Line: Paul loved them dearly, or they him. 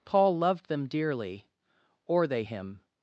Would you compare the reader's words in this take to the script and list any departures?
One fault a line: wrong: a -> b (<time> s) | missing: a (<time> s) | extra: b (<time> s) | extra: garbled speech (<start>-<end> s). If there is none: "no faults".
no faults